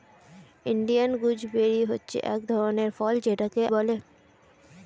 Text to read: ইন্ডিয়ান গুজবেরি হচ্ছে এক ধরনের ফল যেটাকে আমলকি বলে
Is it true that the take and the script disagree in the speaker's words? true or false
true